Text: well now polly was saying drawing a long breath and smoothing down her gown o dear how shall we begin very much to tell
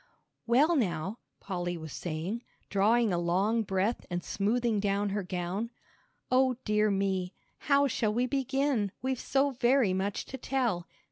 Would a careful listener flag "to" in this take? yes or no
no